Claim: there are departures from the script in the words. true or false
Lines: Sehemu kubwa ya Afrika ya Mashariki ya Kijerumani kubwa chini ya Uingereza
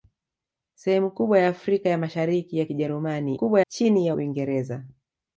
false